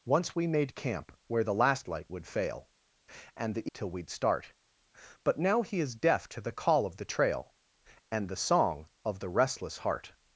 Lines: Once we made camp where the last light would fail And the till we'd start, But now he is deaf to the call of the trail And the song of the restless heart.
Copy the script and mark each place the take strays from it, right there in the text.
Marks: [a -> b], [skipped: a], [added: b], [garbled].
Once we made camp where the last light would fail And the till we'd start, But now he is deaf to the call of the trail And the song of the restless heart.